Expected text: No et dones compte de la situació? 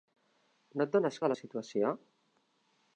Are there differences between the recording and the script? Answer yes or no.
yes